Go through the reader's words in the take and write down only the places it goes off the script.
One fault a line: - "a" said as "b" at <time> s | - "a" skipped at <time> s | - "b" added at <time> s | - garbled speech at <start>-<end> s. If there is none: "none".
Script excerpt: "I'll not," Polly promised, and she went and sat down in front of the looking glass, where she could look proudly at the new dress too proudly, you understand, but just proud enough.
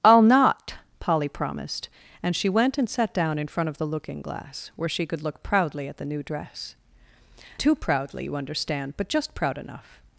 none